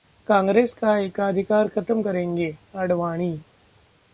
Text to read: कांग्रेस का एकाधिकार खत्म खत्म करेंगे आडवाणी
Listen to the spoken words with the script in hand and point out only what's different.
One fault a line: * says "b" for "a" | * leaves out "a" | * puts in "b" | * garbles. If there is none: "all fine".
* leaves out "खत्म"